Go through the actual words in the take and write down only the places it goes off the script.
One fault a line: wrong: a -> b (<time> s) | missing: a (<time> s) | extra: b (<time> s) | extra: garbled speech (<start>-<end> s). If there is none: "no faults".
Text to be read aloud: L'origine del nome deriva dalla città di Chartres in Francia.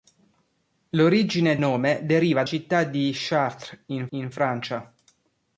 missing: del (1.6 s)
missing: dalla (2.4 s)
extra: in (4.1 s)